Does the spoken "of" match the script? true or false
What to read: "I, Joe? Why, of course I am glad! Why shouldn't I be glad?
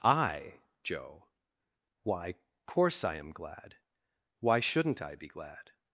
false